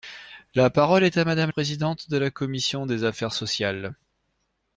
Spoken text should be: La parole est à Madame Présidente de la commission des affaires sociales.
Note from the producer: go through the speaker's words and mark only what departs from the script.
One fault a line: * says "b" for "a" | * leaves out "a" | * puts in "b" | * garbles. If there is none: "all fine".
all fine